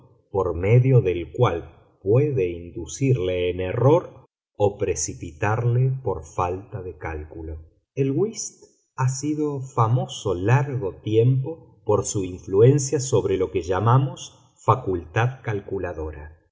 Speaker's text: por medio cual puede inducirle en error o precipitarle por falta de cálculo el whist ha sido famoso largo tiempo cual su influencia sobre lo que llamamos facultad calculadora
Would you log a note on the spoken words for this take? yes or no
yes